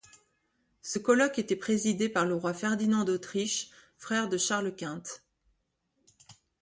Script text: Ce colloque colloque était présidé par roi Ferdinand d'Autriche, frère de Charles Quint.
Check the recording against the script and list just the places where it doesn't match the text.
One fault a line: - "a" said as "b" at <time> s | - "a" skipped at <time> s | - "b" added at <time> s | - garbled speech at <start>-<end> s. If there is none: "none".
- "colloque" skipped at 1.4 s
- "le" added at 2.2 s